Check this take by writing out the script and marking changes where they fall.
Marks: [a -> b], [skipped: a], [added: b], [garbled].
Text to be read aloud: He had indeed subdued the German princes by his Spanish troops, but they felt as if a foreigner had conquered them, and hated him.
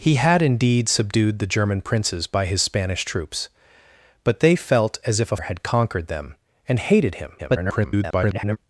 He had indeed subdued the German princes by his Spanish troops, but they felt as if a [skipped: foreigner] had conquered them, and hated him. [garbled]